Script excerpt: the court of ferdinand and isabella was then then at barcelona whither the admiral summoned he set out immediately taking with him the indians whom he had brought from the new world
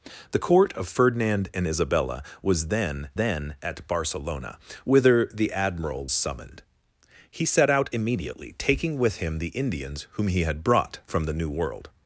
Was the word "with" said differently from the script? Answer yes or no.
no